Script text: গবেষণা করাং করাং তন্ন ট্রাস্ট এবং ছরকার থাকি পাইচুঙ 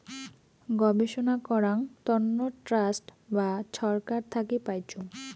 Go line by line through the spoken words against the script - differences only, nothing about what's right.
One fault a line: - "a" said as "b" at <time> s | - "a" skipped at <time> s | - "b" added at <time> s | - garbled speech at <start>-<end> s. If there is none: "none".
- "করাং" skipped at 1.8 s
- "এবং" said as "বা" at 3.3 s